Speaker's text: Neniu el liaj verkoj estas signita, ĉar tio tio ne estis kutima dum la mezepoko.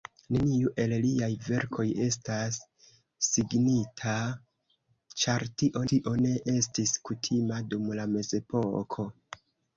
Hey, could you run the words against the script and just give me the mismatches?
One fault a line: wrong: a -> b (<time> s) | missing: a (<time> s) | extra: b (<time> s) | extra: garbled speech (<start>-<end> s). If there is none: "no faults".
no faults